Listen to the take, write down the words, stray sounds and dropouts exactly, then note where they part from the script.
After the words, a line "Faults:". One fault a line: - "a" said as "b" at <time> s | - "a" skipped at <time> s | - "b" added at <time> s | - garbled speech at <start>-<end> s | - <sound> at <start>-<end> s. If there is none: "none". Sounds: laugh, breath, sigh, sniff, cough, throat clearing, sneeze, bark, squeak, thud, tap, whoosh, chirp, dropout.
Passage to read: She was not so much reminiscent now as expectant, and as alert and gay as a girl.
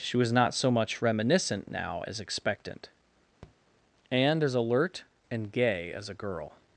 She was not so much reminiscent now as expectant, and as alert and gay as a girl.
Faults:
- tap at 3.4-3.6 s